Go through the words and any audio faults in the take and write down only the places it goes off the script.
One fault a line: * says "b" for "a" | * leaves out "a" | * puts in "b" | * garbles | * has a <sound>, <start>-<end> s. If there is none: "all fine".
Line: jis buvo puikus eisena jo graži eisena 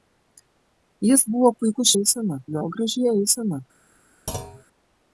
* has a thud, 4.3-4.6 s